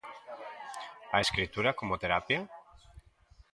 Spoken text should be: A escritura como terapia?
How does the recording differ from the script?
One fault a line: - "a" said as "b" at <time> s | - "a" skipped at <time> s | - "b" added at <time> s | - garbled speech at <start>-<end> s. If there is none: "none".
none